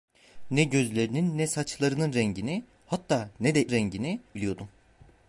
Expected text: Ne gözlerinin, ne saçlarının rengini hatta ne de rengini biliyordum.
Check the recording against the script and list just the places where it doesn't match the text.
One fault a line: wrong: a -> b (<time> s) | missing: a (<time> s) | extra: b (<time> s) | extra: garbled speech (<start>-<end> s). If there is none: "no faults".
no faults